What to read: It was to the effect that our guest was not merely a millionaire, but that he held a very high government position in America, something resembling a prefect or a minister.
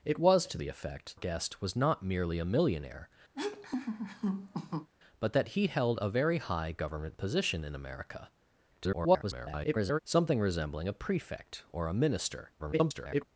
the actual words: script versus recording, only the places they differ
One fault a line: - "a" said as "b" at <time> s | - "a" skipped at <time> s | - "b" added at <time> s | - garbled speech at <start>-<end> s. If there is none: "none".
- "that our" skipped at 1.2 s
- garbled speech at 8.7-10.0 s
- garbled speech at 12.6-13.2 s